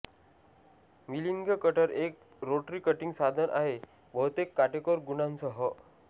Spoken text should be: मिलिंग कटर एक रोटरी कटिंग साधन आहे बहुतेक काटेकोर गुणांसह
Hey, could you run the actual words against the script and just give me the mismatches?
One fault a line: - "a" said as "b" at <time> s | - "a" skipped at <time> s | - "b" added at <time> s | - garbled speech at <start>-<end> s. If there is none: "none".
none